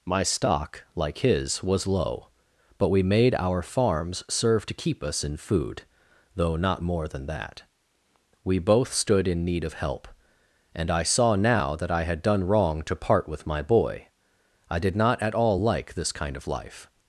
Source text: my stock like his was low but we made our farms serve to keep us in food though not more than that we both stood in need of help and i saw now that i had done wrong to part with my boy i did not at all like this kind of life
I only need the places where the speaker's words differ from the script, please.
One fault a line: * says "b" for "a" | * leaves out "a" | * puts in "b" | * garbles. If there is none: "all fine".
all fine